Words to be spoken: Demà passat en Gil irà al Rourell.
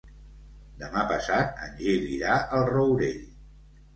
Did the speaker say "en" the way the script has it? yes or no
yes